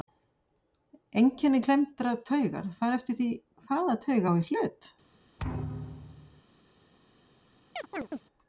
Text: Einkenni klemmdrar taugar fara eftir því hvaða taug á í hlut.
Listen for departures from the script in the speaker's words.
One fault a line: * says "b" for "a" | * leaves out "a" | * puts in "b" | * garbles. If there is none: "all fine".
all fine